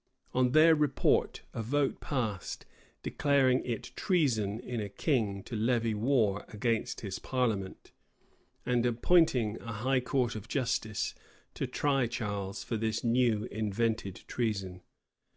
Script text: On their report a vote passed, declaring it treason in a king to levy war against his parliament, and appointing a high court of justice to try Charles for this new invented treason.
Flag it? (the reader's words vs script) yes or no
no